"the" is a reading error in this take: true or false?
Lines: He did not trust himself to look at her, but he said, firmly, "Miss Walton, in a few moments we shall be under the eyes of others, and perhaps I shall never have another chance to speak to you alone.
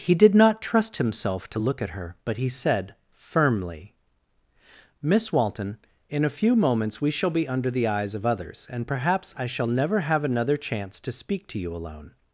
false